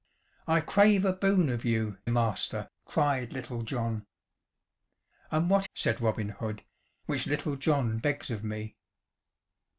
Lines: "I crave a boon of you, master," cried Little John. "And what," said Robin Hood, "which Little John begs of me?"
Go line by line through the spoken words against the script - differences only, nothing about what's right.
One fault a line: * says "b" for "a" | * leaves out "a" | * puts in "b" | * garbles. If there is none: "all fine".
all fine